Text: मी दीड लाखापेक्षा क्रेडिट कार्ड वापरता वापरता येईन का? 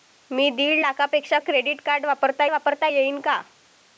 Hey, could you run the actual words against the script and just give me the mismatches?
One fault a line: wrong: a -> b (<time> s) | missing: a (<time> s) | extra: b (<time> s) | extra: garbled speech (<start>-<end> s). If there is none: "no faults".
no faults